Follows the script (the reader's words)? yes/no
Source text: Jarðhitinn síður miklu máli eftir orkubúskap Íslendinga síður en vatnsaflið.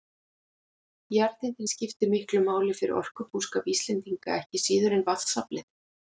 no